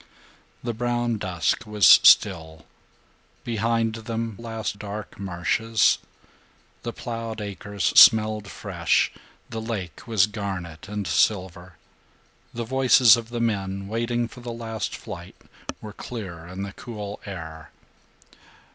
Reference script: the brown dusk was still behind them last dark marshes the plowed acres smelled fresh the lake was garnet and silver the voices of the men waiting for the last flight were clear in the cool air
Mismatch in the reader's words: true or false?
false